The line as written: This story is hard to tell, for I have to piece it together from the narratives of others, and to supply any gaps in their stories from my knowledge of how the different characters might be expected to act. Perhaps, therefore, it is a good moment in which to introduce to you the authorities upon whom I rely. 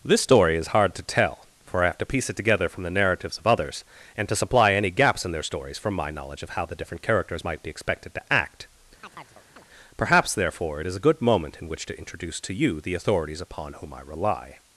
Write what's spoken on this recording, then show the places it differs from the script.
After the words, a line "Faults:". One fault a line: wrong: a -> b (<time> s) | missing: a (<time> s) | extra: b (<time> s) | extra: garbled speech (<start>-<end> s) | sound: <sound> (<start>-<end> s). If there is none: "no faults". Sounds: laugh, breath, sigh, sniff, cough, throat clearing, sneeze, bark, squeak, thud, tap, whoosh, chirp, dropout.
This story is hard to tell, for I have to piece it together from the narratives of others, and to supply any gaps in their stories from my knowledge of how the different characters might be expected to act. Perhaps, therefore, it is a good moment in which to introduce to you the authorities upon whom I rely.
Faults:
sound: chirp (9.0-9.7 s)